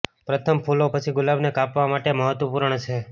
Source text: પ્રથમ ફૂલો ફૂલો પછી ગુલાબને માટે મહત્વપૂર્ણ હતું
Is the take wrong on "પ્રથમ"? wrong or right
right